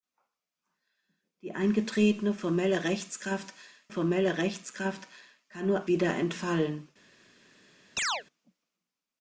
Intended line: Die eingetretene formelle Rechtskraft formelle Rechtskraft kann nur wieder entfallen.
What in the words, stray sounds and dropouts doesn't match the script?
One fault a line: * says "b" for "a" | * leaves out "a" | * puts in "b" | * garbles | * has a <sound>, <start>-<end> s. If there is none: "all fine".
* has a chirp, 8.0-8.2 s